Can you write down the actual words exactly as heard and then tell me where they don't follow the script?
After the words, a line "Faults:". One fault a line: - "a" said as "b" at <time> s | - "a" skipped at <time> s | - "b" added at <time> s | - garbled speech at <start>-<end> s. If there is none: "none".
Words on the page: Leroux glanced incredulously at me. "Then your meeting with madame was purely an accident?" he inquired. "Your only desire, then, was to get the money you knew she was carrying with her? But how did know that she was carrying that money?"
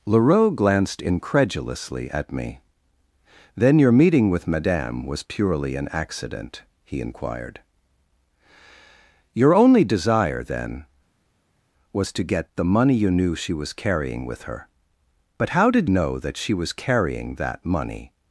Leroux glanced incredulously at me. "Then your meeting with madame was purely an accident?" he inquired. "Your only desire, then, was to get the money you knew she was carrying with her? But how did know that she was carrying that money?"
Faults:
none